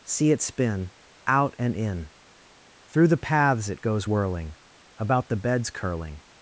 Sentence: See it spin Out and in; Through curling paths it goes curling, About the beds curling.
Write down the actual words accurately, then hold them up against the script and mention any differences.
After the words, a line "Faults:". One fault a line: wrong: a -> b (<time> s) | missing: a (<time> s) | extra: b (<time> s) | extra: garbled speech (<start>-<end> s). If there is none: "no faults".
See it spin Out and in; Through the paths it goes whirling, About the beds curling.
Faults:
wrong: curling -> the (3.1 s)
wrong: curling -> whirling (4.1 s)